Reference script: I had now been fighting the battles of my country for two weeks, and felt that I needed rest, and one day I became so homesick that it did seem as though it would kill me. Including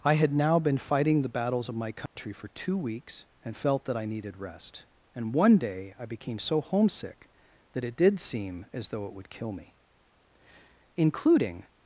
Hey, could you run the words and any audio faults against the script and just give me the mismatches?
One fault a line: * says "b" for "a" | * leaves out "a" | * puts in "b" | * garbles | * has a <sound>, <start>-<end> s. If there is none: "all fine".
* has a dropout, 2.1-2.2 s